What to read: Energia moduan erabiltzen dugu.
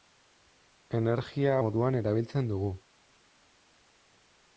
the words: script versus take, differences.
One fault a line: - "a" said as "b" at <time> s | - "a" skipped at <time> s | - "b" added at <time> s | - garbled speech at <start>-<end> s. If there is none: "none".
none